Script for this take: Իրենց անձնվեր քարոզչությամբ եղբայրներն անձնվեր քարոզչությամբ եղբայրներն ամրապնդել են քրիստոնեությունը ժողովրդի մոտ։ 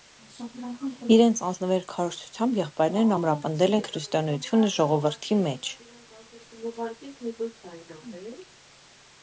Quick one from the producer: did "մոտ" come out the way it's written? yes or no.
no